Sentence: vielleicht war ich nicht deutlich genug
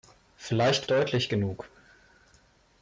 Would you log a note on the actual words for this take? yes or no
yes